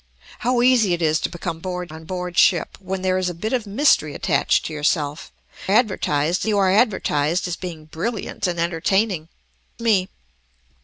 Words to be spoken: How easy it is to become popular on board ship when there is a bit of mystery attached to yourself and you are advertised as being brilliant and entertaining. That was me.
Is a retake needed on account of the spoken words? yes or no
yes